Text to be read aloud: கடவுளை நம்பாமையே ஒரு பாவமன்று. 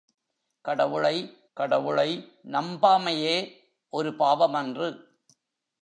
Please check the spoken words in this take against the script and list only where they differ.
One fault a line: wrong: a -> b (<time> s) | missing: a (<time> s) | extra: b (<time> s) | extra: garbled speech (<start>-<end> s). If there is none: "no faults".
extra: கடவுளை (1.5 s)